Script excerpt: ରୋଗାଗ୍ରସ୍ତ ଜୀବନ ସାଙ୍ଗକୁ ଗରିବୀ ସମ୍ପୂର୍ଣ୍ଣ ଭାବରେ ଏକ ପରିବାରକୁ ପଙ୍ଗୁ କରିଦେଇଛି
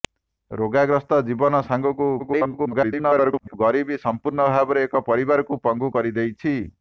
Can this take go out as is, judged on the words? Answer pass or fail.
fail